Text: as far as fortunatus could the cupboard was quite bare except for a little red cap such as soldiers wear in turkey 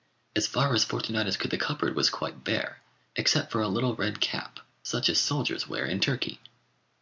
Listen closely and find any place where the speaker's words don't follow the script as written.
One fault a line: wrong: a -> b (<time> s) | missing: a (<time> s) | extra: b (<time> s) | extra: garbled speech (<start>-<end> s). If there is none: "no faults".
no faults